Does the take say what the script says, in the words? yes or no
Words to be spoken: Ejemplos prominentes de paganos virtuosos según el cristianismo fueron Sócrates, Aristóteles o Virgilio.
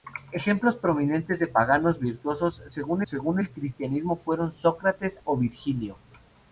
no